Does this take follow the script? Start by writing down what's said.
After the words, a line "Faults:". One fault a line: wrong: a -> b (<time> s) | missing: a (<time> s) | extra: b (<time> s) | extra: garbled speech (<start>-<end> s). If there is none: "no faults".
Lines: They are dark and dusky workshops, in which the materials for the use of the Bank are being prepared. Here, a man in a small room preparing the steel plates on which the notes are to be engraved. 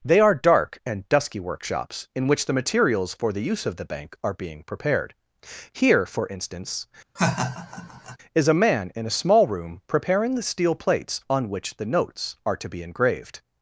They are dark and dusky workshops, in which the materials for the use of the Bank are being prepared. Here, for instance, is a man in a small room preparing the steel plates on which the notes are to be engraved.
Faults:
extra: for instance is (6.1 s)